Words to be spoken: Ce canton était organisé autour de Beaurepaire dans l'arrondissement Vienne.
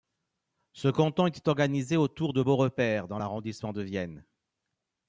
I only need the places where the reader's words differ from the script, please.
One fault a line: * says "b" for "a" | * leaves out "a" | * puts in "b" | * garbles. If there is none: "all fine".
* puts in "de"